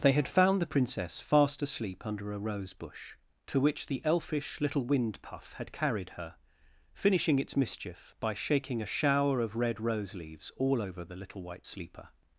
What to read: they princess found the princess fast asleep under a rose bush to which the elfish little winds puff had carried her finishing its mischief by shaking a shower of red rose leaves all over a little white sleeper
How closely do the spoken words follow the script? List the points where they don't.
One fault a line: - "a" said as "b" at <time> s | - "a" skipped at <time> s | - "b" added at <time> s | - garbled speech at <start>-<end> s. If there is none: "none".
- "princess" said as "had" at 0.1 s
- "winds" said as "wind" at 4.8 s
- "a" said as "the" at 11.0 s